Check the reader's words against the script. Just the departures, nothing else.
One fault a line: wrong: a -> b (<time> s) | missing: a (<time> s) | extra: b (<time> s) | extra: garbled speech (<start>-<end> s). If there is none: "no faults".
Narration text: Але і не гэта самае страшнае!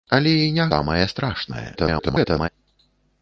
missing: гэта (0.7 s)
extra: garbled speech (1.7-2.5 s)